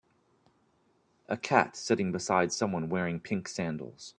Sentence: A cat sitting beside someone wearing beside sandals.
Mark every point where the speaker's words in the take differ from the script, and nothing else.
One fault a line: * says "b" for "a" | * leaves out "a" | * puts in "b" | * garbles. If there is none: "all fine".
* says "pink" for "beside"